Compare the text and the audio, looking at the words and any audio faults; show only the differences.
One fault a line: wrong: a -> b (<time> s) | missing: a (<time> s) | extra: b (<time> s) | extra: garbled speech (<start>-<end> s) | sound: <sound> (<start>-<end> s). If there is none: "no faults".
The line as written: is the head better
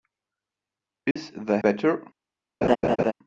sound: dropout (1.1-1.2 s)
missing: head (1.6 s)
sound: laugh (2.6-3.1 s)